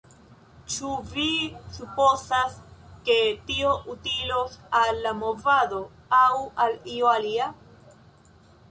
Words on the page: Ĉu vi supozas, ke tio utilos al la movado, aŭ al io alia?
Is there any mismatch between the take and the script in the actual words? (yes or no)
no